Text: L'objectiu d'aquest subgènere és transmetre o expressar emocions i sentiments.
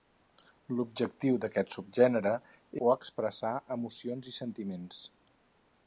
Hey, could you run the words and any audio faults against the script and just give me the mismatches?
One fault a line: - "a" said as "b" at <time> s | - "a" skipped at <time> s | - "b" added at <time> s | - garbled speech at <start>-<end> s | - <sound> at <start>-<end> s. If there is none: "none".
- "és transmetre" skipped at 2.3 s